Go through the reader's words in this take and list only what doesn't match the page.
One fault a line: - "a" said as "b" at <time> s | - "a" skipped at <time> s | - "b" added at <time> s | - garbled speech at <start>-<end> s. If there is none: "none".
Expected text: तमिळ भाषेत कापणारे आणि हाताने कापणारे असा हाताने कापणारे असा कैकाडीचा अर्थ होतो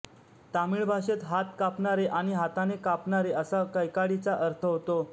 - "हात" added at 1.2 s
- "हाताने कापणारे असा" skipped at 3.6 s